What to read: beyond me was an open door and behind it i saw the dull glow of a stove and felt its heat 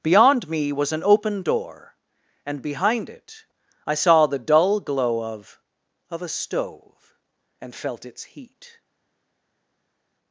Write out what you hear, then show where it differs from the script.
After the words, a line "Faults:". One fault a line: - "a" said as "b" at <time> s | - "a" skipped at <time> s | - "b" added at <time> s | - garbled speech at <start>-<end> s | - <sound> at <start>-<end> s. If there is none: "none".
beyond me was an open door and behind it i saw the dull glow of of a stove and felt its heat
Faults:
- "of" added at 6.1 s